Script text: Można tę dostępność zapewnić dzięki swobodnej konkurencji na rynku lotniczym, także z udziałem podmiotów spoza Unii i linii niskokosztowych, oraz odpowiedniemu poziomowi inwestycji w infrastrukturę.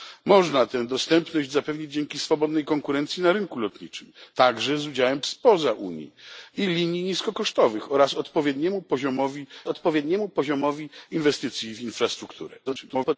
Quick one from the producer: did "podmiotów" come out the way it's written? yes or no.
no